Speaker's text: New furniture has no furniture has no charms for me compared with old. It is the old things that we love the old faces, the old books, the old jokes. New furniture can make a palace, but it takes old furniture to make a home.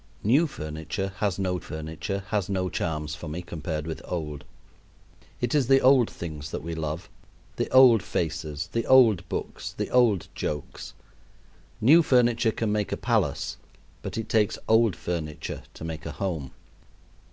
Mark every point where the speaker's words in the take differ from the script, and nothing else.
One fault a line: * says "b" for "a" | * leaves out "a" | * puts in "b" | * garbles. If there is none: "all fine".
all fine